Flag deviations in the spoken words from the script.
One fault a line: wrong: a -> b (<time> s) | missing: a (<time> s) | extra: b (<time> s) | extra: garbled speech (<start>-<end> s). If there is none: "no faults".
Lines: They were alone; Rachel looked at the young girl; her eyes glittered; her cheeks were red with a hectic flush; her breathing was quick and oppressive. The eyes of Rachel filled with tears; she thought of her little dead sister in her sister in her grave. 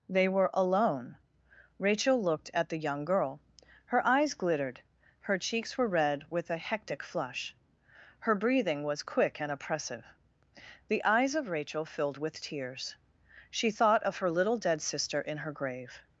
missing: sister in her (15.5 s)